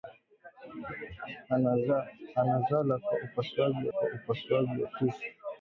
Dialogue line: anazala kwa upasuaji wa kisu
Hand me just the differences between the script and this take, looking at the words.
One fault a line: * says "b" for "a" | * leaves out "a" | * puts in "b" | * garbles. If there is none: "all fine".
* puts in "kwa upasuaji"